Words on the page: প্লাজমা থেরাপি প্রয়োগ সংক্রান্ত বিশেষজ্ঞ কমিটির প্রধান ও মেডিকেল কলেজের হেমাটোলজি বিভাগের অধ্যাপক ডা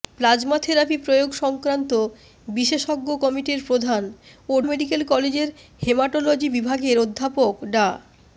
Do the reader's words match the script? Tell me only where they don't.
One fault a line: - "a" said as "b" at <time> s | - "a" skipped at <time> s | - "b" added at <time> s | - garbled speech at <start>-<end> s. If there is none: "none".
none